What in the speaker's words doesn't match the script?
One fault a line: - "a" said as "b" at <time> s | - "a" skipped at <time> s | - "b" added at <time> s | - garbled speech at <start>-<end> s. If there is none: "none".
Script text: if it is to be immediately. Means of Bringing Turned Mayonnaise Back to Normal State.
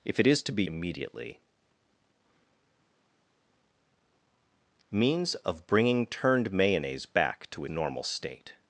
none